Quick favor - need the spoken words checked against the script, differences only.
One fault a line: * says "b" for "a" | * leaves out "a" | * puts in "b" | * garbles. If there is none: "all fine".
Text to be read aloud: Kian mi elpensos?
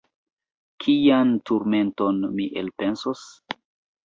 * puts in "turmenton"